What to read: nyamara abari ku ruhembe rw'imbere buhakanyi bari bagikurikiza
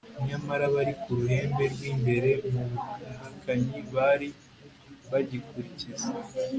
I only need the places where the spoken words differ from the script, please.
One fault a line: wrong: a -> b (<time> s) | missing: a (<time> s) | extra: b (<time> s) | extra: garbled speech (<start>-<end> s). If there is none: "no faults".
extra: mu (2.5 s)